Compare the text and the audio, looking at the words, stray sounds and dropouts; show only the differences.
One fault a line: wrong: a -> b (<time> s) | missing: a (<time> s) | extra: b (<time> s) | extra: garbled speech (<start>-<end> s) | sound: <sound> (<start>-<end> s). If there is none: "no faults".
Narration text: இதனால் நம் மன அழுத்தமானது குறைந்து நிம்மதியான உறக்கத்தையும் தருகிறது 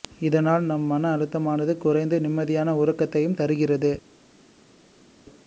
no faults